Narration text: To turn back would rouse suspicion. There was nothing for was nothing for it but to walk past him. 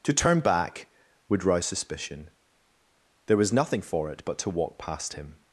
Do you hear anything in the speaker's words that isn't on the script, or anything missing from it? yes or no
yes